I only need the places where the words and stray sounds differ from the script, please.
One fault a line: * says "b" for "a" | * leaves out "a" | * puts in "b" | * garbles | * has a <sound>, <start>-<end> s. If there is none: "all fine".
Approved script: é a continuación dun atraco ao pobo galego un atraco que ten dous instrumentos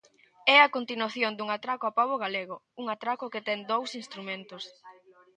all fine